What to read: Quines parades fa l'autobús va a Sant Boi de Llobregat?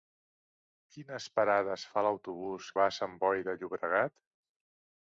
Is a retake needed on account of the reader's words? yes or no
no